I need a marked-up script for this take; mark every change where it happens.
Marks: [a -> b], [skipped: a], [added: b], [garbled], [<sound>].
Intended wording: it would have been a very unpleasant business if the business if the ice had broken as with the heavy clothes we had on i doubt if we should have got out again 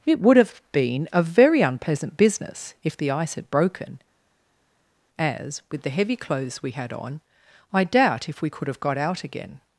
it would have been a very unpleasant business if the [skipped: business if the] ice had broken as with the heavy clothes we had on i doubt if we [should -> could] have got out again